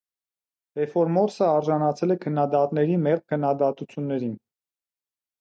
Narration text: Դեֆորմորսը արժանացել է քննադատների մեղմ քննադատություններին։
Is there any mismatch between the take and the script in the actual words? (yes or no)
no